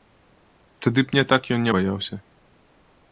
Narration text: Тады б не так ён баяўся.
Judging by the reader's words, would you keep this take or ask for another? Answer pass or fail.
pass